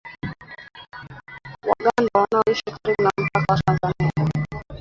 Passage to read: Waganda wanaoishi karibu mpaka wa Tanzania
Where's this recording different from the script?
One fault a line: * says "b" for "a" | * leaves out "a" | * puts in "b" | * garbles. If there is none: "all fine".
* puts in "na"